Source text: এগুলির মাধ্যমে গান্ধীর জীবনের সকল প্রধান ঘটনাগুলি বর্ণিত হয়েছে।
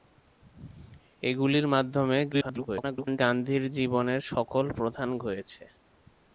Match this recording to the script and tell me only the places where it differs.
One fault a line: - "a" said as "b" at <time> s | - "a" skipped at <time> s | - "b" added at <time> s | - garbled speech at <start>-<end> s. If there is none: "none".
- garbled speech at 2.3-3.2 s
- "ঘটনাগুলি বর্ণিত" skipped at 5.1 s